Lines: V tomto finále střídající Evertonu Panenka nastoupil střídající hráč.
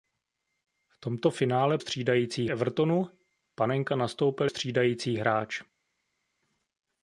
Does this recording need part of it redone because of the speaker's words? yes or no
no